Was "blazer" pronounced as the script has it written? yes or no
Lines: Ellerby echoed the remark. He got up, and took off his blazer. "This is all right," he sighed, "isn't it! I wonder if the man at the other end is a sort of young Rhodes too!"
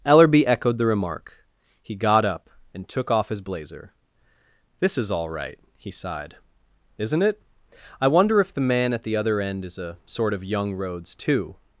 yes